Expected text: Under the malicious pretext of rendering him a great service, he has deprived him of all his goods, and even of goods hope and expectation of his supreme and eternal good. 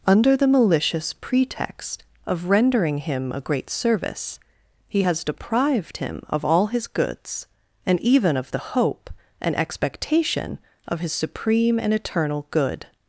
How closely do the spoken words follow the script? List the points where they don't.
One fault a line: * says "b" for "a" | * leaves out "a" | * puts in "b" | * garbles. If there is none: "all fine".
* says "the" for "goods"